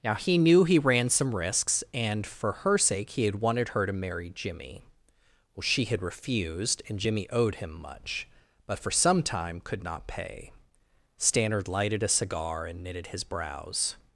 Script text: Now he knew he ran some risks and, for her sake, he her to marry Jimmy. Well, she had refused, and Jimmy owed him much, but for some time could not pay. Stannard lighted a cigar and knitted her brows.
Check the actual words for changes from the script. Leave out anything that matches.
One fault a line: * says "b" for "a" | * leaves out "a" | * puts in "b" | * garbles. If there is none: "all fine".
* puts in "had wanted"
* says "his" for "her"